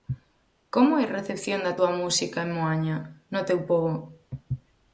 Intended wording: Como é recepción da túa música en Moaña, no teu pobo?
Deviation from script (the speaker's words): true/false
false